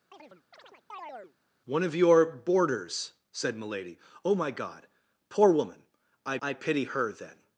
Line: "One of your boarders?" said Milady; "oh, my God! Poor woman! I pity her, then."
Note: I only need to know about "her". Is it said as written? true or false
true